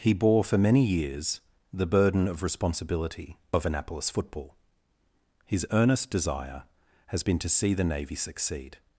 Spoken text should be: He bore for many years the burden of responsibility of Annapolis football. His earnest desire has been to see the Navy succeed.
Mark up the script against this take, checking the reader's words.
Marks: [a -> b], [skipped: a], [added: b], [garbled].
He bore for many years the burden of responsibility of Annapolis football. His earnest desire has been to see the Navy succeed.